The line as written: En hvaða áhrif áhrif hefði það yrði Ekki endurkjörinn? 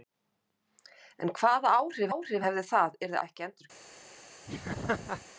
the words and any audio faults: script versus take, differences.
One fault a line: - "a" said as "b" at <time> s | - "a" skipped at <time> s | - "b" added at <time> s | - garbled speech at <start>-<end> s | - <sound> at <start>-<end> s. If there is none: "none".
- laugh at 4.5-5.3 s